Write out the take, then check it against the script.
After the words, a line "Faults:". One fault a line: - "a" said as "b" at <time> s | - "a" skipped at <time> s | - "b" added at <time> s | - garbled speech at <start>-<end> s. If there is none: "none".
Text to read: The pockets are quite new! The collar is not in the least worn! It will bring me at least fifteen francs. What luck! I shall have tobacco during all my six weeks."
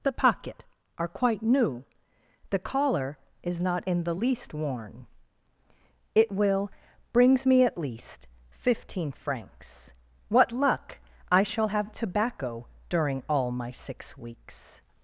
The pocket are quite new! The collar is not in the least worn! It will brings me at least fifteen francs. What luck! I shall have tobacco during all my six weeks."
Faults:
- "pockets" said as "pocket" at 0.1 s
- "bring" said as "brings" at 7.1 s